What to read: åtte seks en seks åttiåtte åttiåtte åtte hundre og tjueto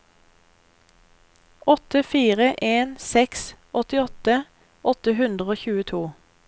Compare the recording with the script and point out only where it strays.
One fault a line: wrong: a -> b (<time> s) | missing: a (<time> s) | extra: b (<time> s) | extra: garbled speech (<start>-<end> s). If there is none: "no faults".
wrong: seks -> fire (2.0 s)
missing: åttiåtte (4.4 s)